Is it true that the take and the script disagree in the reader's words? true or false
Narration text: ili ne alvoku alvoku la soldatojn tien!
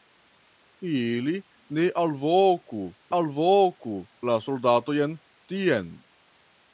false